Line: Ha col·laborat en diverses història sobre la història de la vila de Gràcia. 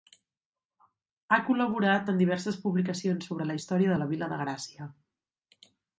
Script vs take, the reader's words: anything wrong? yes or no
yes